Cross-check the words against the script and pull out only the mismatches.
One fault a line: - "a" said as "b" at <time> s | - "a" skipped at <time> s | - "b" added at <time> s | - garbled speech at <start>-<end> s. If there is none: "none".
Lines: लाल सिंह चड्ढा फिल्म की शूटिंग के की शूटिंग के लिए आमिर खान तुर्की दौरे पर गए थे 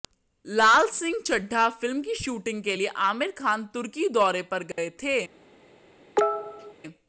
- "की शूटिंग के" skipped at 2.7 s